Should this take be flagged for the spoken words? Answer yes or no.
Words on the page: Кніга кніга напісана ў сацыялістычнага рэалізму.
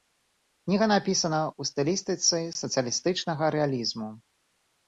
yes